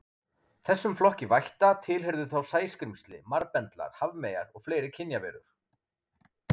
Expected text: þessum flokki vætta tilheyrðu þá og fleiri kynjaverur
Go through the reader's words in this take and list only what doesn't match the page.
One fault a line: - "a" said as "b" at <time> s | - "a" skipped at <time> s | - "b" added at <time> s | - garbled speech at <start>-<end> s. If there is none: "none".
- "sæskrímsli marbendlar hafmeyjar" added at 2.5 s